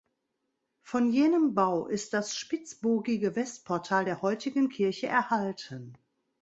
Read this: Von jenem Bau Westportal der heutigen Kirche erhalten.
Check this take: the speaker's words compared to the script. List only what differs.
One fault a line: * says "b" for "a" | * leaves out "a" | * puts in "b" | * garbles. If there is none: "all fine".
* puts in "ist das spitzbogige"